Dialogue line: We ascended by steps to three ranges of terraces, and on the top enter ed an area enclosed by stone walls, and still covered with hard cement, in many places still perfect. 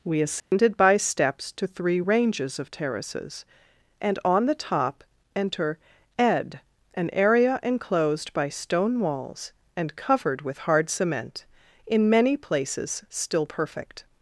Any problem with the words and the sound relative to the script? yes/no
yes